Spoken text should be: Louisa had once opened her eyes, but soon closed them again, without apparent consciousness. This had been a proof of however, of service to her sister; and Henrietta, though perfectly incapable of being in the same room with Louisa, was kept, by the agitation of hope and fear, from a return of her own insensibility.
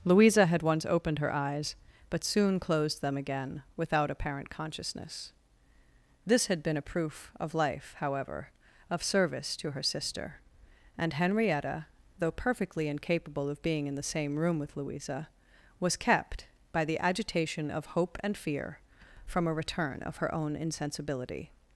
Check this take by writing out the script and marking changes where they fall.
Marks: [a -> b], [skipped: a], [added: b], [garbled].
Louisa had once opened her eyes, but soon closed them again, without apparent consciousness. This had been a proof of [added: life] however, of service to her sister; and Henrietta, though perfectly incapable of being in the same room with Louisa, was kept, by the agitation of hope and fear, from a return of her own insensibility.